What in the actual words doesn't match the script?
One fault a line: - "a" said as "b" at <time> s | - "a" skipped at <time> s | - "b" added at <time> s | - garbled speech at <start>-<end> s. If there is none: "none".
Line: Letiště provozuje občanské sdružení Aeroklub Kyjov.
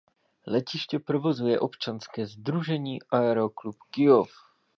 none